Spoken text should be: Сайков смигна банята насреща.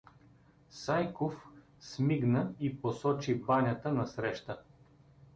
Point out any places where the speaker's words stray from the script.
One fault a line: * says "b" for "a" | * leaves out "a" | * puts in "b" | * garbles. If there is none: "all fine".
* puts in "и посочи"